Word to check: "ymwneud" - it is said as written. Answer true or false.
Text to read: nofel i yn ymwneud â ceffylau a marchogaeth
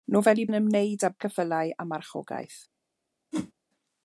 true